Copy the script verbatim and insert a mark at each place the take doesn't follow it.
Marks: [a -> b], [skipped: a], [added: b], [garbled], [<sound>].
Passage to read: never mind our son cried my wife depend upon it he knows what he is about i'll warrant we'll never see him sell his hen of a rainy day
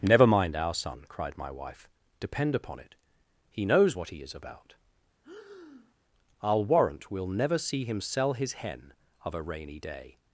never mind our son cried my wife depend upon it he knows what he is about [breath] i'll warrant we'll never see him sell his hen of a rainy day